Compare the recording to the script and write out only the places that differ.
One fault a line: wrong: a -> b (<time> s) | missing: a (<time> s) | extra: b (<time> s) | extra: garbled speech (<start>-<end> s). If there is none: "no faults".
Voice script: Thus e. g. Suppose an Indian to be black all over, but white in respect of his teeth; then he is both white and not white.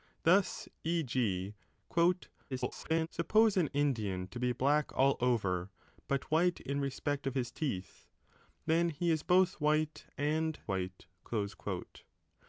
extra: garbled speech (2.5-3.1 s)
missing: not (10.6 s)